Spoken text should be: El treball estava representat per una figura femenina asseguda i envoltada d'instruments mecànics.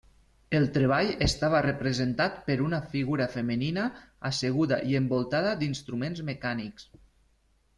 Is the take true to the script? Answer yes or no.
yes